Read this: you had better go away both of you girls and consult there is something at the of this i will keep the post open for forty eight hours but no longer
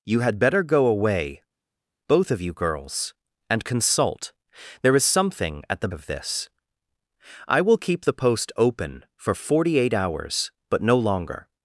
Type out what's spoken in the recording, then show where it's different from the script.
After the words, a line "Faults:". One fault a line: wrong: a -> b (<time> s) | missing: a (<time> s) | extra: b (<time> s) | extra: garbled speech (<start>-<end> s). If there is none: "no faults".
you had better go away both of you girls and consult there is something at the of this i will keep the post open for forty eight hours but no longer
Faults:
no faults